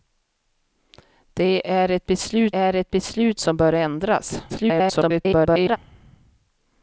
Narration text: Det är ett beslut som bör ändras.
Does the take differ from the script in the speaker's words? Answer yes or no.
yes